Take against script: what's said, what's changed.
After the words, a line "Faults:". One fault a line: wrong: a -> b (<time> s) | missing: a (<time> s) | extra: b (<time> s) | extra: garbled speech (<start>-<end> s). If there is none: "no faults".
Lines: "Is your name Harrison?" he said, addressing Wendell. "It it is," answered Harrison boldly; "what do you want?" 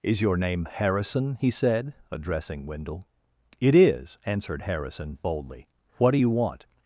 "Is your name Harrison?" he said, addressing Wendell. "It is," answered Harrison boldly; "what do you want?"
Faults:
missing: it (3.7 s)